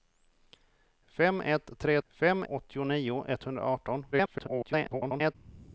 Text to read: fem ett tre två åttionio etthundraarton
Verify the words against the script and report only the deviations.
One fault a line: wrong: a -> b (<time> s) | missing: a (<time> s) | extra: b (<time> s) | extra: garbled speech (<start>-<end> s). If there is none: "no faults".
wrong: två -> fem (2.1 s)
extra: garbled speech (4.1-5.4 s)